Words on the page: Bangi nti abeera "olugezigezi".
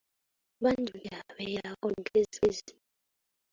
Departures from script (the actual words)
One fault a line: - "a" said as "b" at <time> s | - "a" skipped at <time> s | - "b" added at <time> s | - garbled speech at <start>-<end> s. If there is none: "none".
none